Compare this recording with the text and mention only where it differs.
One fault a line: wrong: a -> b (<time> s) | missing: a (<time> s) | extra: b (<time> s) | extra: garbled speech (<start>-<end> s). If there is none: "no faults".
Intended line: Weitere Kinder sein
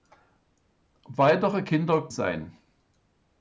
no faults